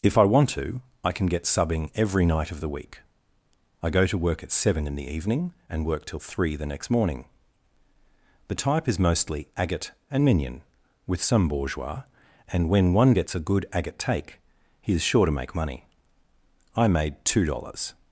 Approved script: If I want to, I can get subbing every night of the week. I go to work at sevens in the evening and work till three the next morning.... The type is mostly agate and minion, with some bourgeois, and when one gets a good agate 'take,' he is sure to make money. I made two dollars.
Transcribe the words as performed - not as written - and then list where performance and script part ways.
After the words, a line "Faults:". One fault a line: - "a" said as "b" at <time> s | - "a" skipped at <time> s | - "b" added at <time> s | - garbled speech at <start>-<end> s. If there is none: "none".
If I want to, I can get subbing every night of the week. I go to work at seven in the evening and work till three the next morning.... The type is mostly agate and minion, with some bourgeois, and when one gets a good agate 'take,' he is sure to make money. I made two dollars.
Faults:
- "sevens" said as "seven" at 4.5 s